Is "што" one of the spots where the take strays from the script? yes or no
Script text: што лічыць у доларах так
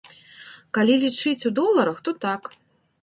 yes